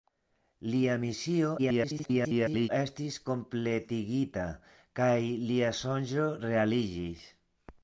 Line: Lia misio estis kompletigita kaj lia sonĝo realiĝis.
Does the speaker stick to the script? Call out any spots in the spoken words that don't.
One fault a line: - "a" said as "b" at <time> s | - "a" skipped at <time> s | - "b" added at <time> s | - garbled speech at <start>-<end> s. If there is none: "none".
- garbled speech at 1.6-2.7 s